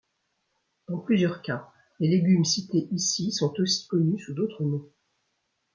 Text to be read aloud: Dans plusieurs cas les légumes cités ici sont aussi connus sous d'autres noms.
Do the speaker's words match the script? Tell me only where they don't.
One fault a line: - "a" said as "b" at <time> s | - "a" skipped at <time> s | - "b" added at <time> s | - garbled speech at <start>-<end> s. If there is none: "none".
none